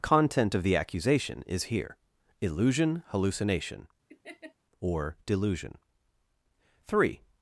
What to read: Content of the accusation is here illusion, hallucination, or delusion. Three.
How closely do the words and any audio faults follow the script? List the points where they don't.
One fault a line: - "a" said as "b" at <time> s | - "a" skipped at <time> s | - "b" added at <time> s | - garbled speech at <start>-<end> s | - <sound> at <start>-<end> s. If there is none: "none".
- laugh at 4.1-4.5 s